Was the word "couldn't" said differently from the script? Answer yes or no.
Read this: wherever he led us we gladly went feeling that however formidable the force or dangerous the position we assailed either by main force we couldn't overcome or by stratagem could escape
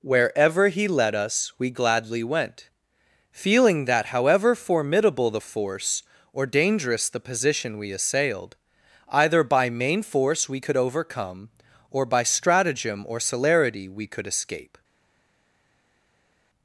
yes